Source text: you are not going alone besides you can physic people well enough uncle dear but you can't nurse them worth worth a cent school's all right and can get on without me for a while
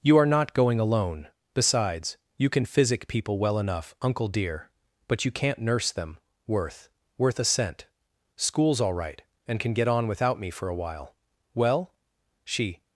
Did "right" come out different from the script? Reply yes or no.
no